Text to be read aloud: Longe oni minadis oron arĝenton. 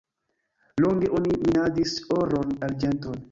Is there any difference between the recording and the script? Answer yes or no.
no